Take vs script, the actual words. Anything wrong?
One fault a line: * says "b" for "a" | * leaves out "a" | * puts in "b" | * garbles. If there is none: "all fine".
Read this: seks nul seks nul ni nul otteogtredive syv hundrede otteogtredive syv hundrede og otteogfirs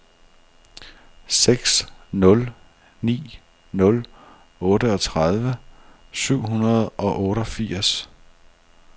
* leaves out "seks nul"
* leaves out "otteogtredive syv hundrede"